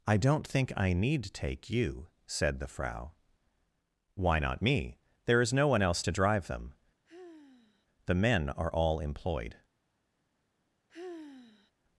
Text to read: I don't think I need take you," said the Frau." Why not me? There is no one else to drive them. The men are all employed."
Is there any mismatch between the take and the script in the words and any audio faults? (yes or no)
yes